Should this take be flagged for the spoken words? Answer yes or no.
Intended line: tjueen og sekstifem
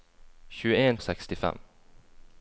no